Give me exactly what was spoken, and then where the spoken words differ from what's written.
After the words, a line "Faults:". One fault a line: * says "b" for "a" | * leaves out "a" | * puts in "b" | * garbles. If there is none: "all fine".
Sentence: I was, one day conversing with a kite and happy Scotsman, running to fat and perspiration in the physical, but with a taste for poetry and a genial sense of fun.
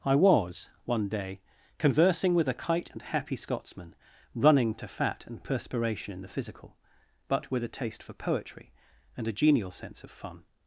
I was, one day conversing with a kite and happy Scotsman, running to fat and perspiration in the physical, but with a taste for poetry and a genial sense of fun.
Faults:
all fine